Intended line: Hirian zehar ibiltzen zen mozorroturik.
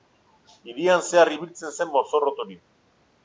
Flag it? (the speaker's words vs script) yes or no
no